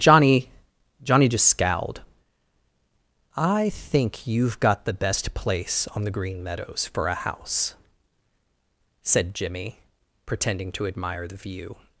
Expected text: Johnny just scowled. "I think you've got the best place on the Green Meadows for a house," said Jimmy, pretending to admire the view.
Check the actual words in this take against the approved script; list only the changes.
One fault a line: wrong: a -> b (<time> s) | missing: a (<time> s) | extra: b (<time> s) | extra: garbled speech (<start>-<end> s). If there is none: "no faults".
extra: johnny (1.0 s)